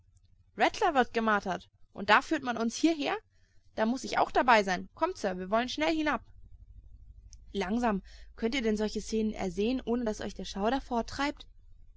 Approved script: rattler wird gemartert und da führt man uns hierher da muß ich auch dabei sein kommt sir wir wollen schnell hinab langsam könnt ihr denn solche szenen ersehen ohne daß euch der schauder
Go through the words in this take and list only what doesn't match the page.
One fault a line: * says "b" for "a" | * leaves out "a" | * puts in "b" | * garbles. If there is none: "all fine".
all fine